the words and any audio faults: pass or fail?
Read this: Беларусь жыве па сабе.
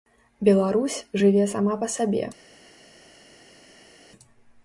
fail